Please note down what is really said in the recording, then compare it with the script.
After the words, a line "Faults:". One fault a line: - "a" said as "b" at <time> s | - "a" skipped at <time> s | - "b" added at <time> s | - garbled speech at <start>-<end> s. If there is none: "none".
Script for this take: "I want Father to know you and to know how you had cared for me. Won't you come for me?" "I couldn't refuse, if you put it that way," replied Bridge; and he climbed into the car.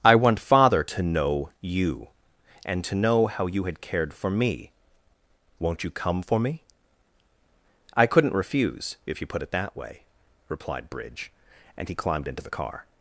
"I want Father to know you and to know how you had cared for me. Won't you come for me?" "I couldn't refuse, if you put it that way," replied Bridge; and he climbed into the car.
Faults:
none